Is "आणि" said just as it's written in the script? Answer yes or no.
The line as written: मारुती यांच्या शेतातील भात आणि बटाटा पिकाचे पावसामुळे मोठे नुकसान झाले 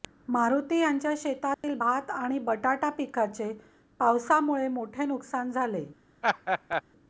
yes